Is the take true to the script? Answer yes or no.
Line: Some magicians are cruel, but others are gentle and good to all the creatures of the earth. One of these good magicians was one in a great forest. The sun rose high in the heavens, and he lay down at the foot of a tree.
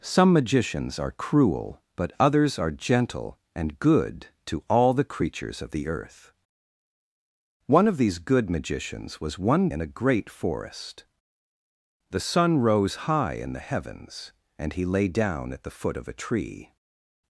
yes